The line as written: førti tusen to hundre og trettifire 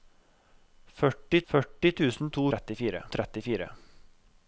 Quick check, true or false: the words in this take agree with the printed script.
false